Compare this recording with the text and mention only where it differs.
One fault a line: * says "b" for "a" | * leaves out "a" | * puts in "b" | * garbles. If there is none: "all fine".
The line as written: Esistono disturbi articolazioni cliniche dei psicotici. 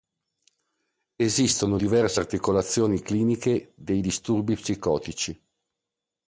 * says "diverse" for "disturbi"
* puts in "disturbi"